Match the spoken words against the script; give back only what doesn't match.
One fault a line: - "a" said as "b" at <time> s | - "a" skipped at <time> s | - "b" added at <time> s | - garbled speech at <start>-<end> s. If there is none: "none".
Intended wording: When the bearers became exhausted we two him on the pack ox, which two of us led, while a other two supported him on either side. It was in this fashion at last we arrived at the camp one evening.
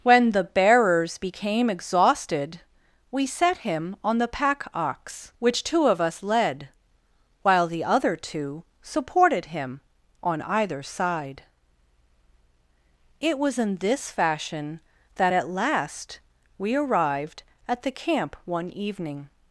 - "two" said as "set" at 3.3 s
- "a" said as "the" at 7.7 s
- "that" added at 15.2 s